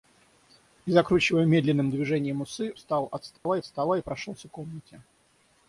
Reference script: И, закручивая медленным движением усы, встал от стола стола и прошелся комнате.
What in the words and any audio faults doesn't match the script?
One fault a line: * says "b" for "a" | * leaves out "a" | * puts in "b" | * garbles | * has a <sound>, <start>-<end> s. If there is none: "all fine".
* has a dropout, 3.4-3.5 s